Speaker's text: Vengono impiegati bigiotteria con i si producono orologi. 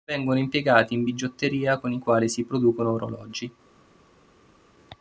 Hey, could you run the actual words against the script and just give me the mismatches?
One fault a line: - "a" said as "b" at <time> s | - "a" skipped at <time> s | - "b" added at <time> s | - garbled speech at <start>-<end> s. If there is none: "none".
- "in" added at 0.9 s
- "quali" added at 2.0 s